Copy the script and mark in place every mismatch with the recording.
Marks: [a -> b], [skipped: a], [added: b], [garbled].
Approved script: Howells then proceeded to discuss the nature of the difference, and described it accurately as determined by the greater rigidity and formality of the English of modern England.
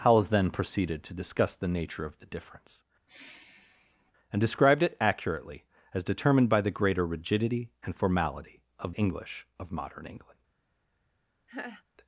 Howells then proceeded to discuss the nature of the difference, and described it accurately as determined by the greater rigidity and formality of [skipped: the] English of modern England.